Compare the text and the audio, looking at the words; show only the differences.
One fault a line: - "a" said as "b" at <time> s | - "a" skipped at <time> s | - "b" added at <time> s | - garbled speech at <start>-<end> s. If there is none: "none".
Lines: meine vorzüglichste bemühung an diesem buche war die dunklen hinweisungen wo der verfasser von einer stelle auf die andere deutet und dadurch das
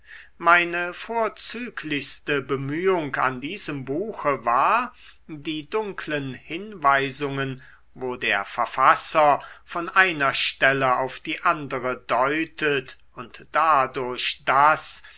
none